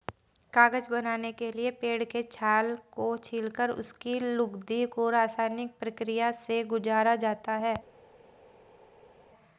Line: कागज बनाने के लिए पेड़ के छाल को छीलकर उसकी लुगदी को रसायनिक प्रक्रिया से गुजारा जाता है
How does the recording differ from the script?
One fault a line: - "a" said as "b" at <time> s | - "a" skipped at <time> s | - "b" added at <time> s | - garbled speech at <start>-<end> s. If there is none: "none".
none